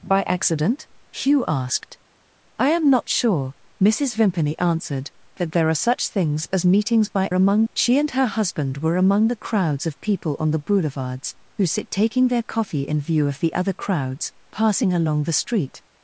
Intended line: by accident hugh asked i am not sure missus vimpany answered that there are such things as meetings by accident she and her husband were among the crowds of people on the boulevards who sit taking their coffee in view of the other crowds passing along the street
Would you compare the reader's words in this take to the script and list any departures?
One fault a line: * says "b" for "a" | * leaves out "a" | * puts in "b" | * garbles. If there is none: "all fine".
* says "among" for "accident"